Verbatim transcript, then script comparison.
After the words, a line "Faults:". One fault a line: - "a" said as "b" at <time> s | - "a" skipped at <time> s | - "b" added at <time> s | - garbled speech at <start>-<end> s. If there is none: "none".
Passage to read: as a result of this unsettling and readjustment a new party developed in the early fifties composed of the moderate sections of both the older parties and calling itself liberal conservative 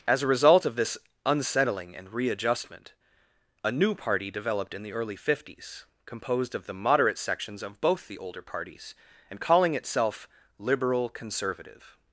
as a result of this unsettling and readjustment a new party developed in the early fifties composed of the moderate sections of both the older parties and calling itself liberal conservative
Faults:
none